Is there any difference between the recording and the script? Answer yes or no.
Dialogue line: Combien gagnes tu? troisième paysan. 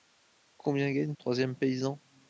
yes